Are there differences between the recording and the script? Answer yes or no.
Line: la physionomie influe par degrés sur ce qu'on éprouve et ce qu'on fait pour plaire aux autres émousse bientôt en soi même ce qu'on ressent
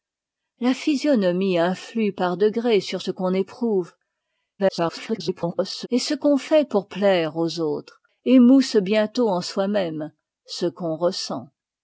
yes